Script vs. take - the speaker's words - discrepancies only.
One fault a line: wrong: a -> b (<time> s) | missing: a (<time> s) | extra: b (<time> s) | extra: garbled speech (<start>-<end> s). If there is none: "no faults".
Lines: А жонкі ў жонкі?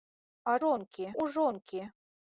no faults